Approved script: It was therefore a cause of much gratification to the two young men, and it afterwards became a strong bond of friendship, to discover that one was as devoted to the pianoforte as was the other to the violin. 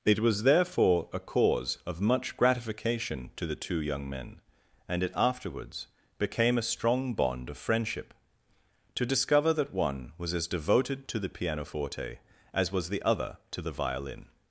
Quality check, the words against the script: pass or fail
pass